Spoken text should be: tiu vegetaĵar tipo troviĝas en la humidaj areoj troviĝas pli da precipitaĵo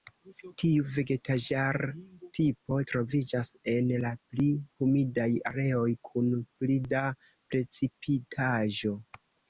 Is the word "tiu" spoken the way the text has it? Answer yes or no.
yes